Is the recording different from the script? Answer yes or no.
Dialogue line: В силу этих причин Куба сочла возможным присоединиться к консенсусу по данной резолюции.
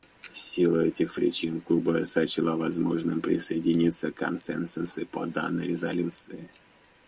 no